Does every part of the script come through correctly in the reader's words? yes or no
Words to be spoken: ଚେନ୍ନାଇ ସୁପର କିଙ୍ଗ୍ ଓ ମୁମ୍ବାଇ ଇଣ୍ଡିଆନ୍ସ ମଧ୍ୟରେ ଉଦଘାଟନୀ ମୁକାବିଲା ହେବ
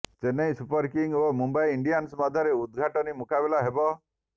yes